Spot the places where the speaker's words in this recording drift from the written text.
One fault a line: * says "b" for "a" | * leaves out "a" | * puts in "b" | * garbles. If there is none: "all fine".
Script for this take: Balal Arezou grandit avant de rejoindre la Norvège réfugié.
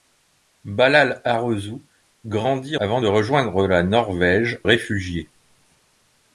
all fine